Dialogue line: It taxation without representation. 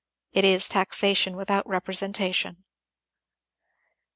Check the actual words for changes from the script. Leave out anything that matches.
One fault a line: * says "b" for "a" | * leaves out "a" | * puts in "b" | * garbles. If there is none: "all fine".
* puts in "is"